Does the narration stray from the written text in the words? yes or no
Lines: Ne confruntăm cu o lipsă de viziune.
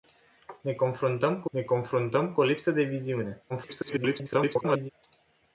yes